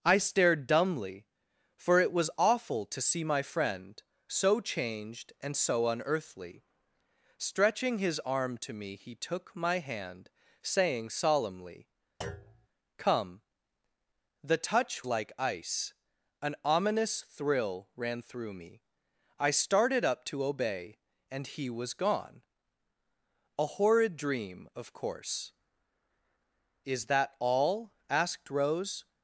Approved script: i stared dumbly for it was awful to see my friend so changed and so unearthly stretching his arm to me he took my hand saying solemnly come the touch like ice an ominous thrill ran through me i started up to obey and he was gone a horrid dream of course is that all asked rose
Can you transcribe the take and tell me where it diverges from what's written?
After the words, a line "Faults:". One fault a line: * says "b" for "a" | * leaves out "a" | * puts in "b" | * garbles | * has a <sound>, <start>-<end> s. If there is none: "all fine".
i stared dumbly for it was awful to see my friend so changed and so unearthly stretching his arm to me he took my hand saying solemnly come the touch like ice an ominous thrill ran through me i started up to obey and he was gone a horrid dream of course is that all asked rose
Faults:
* has a thud, 12.2-12.7 s